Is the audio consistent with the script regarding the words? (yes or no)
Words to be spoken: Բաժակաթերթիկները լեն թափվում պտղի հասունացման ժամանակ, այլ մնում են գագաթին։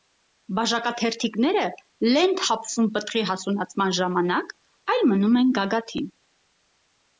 yes